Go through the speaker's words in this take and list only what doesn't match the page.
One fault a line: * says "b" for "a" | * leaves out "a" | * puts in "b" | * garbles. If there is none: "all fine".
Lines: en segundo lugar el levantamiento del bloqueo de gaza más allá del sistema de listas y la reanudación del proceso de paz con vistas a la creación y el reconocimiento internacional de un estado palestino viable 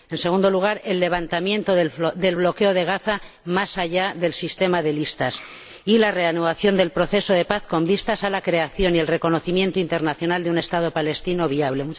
all fine